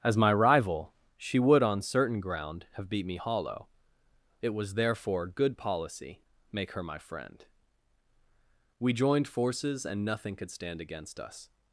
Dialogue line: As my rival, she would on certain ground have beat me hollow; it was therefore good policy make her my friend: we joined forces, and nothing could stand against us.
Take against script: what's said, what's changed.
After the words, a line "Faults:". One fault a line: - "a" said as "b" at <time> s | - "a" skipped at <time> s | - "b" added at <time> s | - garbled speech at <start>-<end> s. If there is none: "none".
As my rival, she would on certain ground have beat me hollow; it was therefore good policy make her my friend: we joined forces, and nothing could stand against us.
Faults:
none